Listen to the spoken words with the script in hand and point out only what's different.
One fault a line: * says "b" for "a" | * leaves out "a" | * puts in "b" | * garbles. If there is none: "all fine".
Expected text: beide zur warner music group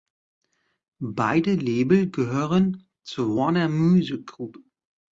* puts in "label gehören"